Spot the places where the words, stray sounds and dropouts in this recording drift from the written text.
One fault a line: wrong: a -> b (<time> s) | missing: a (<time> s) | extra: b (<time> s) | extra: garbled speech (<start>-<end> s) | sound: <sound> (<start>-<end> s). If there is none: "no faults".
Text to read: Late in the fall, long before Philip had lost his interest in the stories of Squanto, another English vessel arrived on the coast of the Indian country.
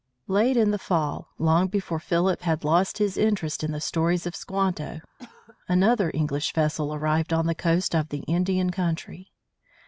sound: cough (5.2-5.6 s)